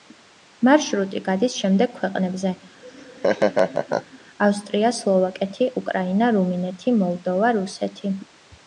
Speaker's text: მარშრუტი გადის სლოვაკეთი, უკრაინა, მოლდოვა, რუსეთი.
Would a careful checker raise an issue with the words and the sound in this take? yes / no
yes